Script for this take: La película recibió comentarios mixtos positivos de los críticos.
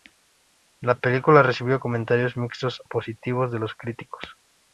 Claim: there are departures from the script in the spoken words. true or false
false